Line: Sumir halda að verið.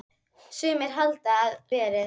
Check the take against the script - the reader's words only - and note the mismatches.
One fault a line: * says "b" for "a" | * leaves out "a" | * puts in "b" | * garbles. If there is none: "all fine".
all fine